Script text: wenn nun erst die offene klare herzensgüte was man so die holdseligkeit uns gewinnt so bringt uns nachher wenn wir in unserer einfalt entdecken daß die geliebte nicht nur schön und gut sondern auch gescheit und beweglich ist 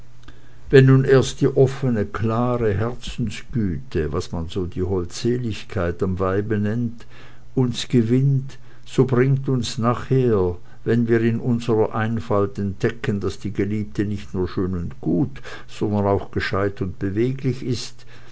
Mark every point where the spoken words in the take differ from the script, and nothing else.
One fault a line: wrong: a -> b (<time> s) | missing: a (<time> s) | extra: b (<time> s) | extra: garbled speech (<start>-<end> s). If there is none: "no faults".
extra: am weibe nennt (6.0 s)